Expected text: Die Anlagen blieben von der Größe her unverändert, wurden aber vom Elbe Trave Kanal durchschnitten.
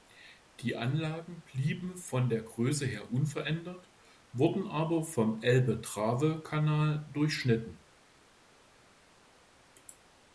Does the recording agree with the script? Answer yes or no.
yes